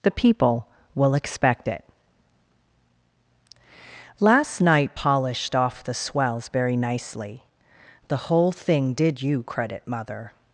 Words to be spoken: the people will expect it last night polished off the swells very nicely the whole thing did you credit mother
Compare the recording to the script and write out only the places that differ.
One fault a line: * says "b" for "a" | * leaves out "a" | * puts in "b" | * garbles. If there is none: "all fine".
all fine